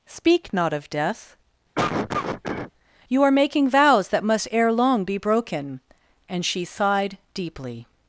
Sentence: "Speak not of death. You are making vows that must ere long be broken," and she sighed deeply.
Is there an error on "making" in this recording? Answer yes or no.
no